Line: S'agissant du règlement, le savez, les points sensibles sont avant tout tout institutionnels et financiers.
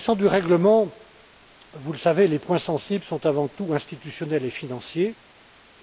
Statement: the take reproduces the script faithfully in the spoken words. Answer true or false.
false